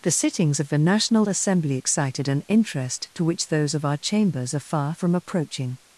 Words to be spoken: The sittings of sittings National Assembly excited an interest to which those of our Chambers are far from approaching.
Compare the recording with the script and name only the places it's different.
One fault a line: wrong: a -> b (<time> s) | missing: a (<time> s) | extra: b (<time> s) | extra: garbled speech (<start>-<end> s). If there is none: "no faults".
wrong: sittings -> the (0.7 s)